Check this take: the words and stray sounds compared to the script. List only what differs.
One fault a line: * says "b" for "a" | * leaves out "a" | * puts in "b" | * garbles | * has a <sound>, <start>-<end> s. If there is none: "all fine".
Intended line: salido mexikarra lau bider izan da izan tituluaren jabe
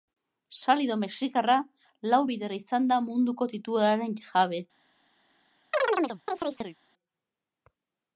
* says "munduko" for "izan"
* has a chirp, 5.7-6.8 s